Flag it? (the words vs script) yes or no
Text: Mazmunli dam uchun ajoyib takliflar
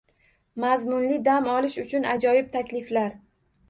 yes